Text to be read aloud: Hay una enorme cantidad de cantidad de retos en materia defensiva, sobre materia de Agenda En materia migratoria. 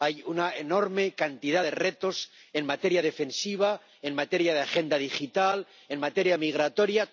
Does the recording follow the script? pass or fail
fail